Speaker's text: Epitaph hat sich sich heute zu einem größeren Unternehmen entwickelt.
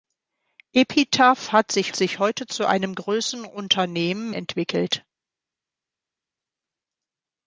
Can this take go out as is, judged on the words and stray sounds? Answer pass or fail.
pass